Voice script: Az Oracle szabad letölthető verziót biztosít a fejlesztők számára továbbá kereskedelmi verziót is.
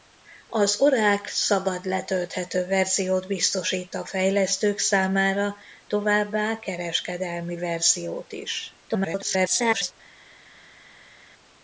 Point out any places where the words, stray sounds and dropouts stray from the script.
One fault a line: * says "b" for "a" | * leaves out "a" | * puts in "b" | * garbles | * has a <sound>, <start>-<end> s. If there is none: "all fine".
* garbles